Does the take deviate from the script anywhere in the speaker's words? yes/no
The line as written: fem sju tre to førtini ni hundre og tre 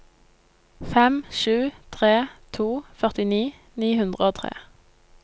no